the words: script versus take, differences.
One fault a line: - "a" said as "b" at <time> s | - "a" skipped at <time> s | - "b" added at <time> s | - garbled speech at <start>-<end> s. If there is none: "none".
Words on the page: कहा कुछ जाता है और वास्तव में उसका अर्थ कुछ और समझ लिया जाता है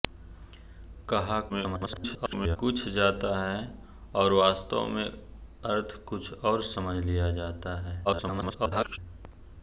- garbled speech at 1.5-2.6 s
- "उसका" skipped at 5.1 s
- garbled speech at 8.0-9.0 s